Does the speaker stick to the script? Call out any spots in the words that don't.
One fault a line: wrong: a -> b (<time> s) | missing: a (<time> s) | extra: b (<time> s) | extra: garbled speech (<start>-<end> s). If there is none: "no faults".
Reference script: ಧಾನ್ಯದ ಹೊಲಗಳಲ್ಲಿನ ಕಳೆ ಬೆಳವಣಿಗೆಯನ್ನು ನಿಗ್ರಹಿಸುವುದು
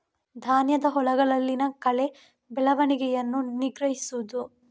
no faults